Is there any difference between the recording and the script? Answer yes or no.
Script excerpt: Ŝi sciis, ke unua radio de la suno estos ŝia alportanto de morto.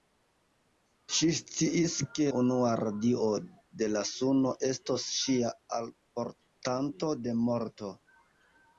no